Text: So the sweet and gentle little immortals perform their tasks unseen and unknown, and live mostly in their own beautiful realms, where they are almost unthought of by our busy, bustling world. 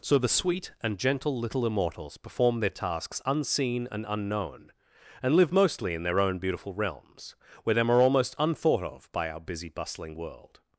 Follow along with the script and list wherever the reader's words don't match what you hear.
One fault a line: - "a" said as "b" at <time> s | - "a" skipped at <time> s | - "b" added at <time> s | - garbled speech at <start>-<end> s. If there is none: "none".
- "they" said as "them" at 7.8 s